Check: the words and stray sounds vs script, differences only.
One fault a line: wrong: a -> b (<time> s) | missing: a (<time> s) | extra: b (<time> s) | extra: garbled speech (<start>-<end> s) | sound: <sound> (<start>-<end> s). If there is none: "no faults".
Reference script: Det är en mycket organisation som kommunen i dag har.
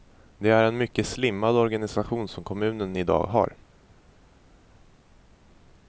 extra: slimmad (1.1 s)